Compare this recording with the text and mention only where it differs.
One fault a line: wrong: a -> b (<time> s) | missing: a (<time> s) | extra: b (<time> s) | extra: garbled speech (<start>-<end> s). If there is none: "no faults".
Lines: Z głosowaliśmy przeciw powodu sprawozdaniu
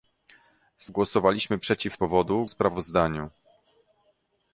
no faults